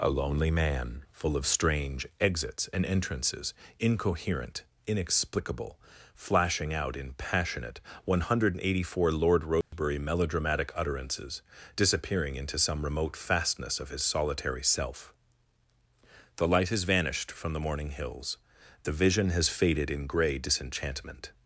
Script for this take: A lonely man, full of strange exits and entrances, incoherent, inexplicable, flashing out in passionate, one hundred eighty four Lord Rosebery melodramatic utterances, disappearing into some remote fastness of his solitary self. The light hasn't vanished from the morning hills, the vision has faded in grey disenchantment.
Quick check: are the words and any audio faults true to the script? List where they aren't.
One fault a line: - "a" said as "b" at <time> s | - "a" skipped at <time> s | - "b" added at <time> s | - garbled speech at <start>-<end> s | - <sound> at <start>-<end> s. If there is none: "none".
- dropout at 9.6-9.7 s
- "hasn't" said as "has" at 16.7 s